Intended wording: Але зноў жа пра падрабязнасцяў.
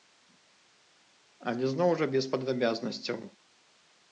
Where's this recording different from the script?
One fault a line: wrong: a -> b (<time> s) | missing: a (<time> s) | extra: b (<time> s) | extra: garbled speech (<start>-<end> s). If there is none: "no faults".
wrong: пра -> без (2.2 s)